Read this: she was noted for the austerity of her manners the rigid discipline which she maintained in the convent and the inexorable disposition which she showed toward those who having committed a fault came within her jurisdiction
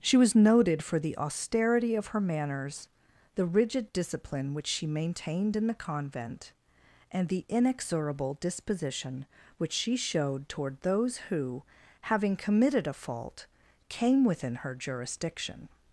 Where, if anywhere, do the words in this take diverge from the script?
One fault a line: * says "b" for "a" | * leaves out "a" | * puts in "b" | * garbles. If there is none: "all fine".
all fine